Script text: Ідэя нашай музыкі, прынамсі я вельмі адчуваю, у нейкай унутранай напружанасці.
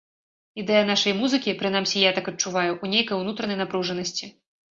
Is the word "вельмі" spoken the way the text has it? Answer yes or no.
no